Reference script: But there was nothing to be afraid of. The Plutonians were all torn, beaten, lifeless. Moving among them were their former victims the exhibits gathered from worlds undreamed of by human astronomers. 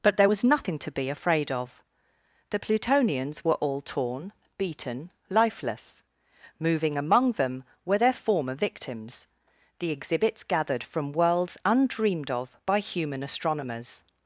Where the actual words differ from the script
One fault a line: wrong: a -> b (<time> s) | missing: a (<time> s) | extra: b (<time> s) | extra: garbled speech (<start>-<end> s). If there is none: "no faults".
no faults